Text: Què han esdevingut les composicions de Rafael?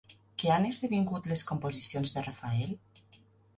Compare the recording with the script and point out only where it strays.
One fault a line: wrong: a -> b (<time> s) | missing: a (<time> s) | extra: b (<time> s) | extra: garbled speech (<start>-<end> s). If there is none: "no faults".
no faults